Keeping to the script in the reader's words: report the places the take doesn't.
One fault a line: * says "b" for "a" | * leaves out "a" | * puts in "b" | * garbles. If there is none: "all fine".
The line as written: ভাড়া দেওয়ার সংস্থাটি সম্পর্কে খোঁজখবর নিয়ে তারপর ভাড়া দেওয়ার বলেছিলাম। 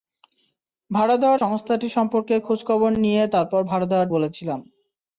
all fine